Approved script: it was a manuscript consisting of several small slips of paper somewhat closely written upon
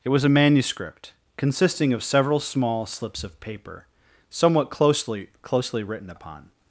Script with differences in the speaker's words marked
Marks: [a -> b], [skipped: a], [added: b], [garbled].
it was a manuscript consisting of several small slips of paper somewhat closely [added: closely] written upon